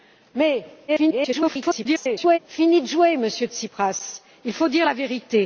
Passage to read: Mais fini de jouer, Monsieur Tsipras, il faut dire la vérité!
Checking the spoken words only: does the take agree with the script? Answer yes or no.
no